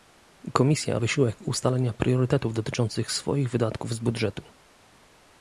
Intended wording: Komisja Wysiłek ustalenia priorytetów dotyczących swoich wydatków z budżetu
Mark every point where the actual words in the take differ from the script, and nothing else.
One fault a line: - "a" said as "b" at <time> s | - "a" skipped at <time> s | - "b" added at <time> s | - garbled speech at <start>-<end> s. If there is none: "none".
none